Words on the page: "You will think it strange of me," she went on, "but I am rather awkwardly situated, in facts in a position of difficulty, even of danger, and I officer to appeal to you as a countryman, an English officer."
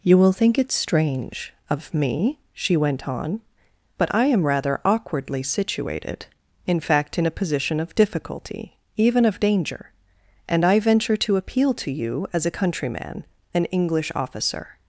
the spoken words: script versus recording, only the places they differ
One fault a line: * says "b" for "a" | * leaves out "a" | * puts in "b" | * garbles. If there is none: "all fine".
* says "fact" for "facts"
* says "venture" for "officer"